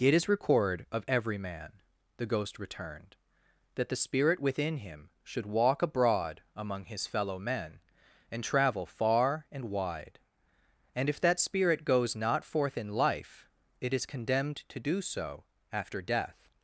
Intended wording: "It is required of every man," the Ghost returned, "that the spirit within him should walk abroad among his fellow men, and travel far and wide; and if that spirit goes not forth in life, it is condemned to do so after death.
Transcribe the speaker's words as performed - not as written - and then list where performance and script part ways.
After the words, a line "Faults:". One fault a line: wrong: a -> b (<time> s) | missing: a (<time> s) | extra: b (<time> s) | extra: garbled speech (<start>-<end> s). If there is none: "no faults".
"It is record of every man," the Ghost returned, "that the spirit within him should walk abroad among his fellow men, and travel far and wide; and if that spirit goes not forth in life, it is condemned to do so after death.
Faults:
wrong: required -> record (0.3 s)